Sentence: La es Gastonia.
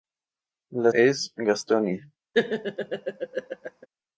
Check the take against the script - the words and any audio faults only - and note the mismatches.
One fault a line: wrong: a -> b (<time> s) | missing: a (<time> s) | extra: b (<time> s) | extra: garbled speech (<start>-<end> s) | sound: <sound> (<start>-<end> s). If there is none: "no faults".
sound: laugh (2.3-3.9 s)